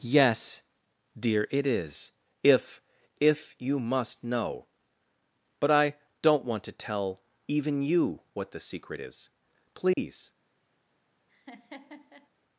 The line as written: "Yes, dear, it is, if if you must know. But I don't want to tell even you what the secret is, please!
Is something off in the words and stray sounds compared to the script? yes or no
yes